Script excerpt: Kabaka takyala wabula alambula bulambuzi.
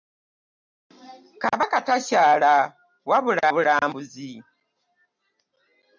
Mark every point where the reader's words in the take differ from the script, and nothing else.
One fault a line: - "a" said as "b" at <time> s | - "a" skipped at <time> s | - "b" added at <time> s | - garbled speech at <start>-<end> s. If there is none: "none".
- "alambula" skipped at 3.4 s